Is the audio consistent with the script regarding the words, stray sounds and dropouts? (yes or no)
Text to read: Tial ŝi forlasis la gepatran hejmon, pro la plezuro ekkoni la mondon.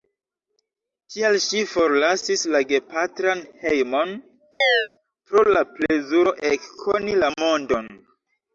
no